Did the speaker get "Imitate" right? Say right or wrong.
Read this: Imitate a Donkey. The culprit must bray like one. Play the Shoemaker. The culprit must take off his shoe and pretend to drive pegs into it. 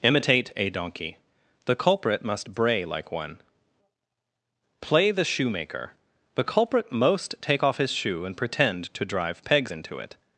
right